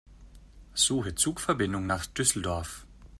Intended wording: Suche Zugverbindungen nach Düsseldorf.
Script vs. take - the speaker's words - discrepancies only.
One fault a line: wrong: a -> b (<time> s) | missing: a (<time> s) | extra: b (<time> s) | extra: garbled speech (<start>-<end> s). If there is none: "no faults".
no faults